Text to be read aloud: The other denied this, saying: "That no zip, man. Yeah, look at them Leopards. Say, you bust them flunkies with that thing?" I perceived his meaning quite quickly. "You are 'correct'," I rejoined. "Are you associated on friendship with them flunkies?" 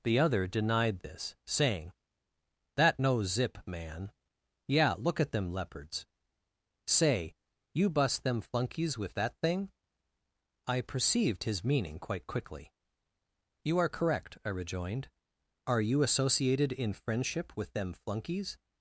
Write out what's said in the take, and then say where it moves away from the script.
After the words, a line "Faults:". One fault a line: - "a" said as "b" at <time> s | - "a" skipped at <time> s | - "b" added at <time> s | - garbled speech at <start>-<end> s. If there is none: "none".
The other denied this, saying: "That no zip, man. Yeah, look at them Leopards. Say, you bust them flunkies with that thing?" I perceived his meaning quite quickly. "You are 'correct'," I rejoined. "Are you associated in friendship with them flunkies?"
Faults:
- "on" said as "in" at 16.7 s